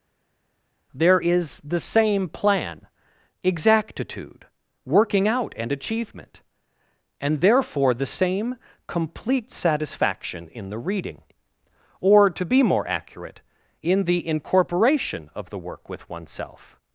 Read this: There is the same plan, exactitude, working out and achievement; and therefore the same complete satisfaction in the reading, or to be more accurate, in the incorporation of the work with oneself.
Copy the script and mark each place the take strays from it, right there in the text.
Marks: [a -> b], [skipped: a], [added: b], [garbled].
There is the same plan, exactitude, working out and achievement; and therefore the same complete satisfaction in the reading, or to be more accurate, in the incorporation of the work with oneself.